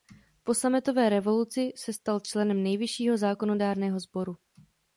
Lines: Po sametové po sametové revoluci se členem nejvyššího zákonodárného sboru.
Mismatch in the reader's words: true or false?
true